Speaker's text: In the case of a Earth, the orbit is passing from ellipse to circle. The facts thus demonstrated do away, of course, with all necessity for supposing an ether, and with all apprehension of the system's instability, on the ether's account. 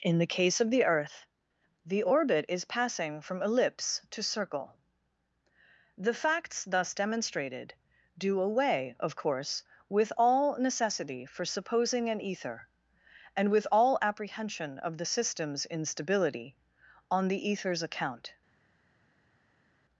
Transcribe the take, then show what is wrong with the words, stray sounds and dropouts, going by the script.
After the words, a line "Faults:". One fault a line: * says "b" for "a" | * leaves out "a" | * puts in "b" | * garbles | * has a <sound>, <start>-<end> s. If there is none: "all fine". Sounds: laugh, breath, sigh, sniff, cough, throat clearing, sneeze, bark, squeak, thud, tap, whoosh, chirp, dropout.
In the case of the Earth, the orbit is passing from ellipse to circle. The facts thus demonstrated do away, of course, with all necessity for supposing an ether, and with all apprehension of the system's instability, on the ether's account.
Faults:
* says "the" for "a"